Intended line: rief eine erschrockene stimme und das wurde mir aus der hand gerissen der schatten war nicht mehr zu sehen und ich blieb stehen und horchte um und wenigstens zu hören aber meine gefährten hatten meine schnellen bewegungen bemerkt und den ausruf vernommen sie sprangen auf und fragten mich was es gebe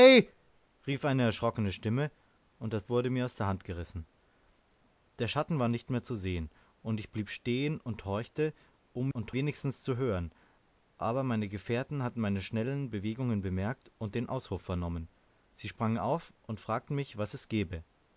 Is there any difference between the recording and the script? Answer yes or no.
no